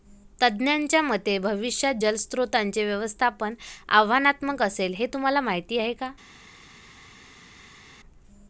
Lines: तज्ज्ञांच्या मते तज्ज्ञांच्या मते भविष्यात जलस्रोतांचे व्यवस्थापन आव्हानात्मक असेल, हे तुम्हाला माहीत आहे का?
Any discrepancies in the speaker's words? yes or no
yes